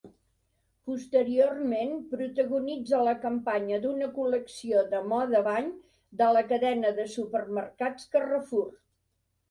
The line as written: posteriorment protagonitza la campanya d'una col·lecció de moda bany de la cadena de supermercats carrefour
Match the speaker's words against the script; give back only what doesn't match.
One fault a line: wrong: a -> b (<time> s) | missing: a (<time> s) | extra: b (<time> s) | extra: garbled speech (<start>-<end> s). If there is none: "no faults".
no faults